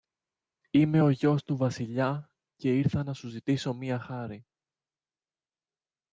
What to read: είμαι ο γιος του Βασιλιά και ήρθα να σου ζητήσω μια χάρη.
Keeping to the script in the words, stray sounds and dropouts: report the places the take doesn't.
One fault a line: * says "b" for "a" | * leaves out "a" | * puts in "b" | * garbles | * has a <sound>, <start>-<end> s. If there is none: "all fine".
all fine